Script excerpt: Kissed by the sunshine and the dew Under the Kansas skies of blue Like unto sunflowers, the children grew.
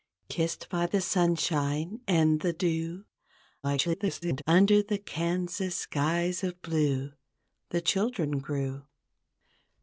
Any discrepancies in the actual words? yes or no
yes